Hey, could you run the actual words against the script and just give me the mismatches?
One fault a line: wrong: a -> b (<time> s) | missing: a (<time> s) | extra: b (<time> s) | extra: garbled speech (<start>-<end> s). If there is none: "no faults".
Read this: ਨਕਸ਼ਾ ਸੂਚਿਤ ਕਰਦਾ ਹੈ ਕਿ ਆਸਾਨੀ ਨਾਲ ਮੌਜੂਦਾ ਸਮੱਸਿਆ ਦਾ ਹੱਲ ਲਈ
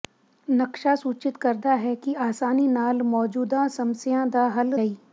no faults